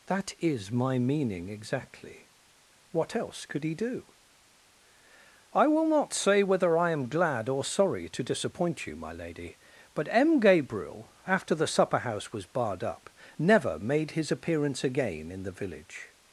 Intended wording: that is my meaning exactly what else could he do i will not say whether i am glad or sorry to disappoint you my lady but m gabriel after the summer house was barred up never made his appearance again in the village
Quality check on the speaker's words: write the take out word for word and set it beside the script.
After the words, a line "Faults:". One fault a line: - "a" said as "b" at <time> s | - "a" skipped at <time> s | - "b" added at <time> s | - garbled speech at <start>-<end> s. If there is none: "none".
that is my meaning exactly what else could he do i will not say whether i am glad or sorry to disappoint you my lady but m gabriel after the supper house was barred up never made his appearance again in the village
Faults:
- "summer" said as "supper" at 11.7 s